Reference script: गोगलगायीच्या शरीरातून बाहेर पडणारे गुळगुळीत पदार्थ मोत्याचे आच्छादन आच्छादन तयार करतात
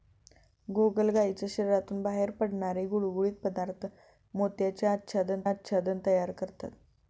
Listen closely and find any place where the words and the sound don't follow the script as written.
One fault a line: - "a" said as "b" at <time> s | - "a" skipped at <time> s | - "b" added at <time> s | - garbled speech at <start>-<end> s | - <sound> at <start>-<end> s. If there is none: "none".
none